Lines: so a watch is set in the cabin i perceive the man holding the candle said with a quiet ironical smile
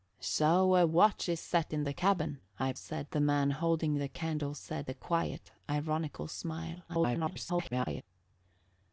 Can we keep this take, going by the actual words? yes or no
no